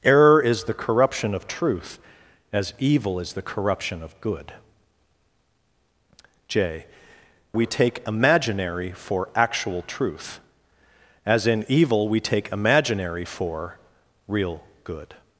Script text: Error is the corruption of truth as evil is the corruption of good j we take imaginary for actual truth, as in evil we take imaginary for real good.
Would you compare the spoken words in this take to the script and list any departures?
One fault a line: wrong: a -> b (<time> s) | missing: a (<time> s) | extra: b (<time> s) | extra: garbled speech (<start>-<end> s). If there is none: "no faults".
no faults